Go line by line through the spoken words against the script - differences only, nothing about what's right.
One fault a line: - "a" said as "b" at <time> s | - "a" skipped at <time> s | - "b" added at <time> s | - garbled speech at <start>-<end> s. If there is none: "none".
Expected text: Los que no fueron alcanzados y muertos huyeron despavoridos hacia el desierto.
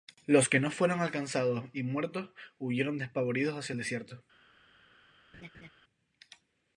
none